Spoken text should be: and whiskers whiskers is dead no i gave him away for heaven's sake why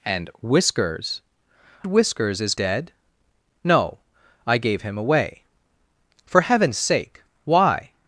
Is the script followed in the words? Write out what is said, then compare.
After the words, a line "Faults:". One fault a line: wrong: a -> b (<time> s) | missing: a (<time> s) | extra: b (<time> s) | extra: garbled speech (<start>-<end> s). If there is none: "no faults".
and whiskers whiskers is dead no i gave him away for heaven's sake why
Faults:
no faults